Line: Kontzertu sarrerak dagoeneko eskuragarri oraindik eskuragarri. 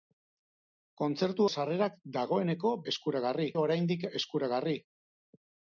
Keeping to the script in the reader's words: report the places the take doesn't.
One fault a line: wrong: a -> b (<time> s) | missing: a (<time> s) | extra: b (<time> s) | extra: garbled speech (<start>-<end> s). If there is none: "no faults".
no faults